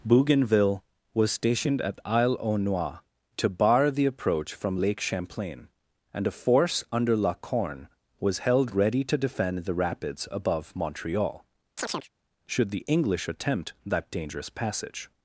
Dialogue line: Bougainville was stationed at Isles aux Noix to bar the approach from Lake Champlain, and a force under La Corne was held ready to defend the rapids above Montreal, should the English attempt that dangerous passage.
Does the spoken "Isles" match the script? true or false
false